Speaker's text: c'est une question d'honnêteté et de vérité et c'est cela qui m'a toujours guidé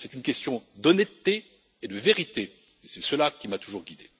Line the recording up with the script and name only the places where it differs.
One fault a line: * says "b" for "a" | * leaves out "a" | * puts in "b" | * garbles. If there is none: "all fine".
all fine